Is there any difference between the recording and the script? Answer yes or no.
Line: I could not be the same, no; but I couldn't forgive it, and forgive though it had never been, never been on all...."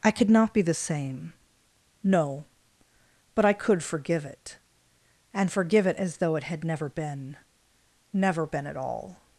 yes